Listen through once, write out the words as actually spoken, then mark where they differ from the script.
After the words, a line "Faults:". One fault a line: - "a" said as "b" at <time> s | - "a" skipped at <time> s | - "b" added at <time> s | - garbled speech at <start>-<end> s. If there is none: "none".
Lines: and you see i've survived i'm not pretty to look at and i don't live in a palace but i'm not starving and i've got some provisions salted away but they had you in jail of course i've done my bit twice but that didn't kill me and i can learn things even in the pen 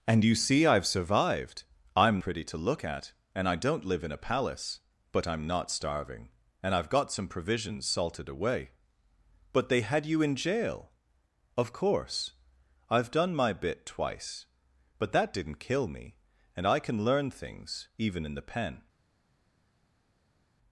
and you see i've survived i'm pretty to look at and i don't live in a palace but i'm not starving and i've got some provisions salted away but they had you in jail of course i've done my bit twice but that didn't kill me and i can learn things even in the pen
Faults:
- "not" skipped at 2.2 s